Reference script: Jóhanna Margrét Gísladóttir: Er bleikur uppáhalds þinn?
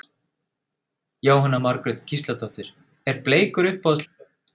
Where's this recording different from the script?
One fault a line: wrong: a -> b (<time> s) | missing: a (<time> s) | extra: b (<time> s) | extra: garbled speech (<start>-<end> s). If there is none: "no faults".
no faults